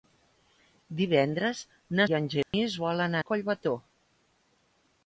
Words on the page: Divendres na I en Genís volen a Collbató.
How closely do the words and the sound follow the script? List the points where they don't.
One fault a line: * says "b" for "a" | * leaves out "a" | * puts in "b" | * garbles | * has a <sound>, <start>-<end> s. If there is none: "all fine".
* has a dropout, 2.4-2.5 s